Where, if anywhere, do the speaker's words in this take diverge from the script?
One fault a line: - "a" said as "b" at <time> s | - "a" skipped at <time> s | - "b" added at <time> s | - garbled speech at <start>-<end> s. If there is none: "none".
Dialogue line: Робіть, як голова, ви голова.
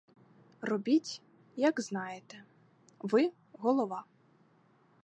- "голова" said as "знаєте" at 1.8 s